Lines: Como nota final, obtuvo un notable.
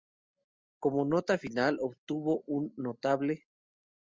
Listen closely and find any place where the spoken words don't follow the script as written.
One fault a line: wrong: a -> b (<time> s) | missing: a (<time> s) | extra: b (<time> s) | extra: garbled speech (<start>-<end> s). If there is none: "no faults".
no faults